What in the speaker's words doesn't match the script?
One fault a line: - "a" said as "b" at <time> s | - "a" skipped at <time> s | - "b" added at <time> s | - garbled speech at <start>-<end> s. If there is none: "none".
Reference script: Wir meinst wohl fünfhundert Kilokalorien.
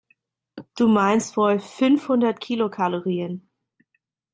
- "Wir" said as "Du" at 0.8 s